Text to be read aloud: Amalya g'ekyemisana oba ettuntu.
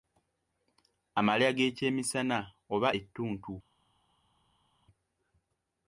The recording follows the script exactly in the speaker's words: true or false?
true